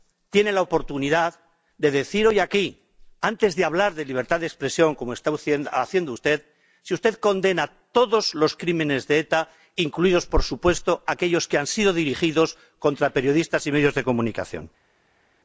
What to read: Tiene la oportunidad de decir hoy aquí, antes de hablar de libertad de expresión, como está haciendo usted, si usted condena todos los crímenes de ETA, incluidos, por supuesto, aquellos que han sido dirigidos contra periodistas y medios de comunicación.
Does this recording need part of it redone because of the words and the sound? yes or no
no